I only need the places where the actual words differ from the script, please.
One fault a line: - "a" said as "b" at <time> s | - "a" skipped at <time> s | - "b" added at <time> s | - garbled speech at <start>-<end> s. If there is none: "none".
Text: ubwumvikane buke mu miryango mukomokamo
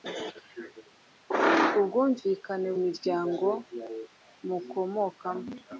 - "buke mu" skipped at 2.7 s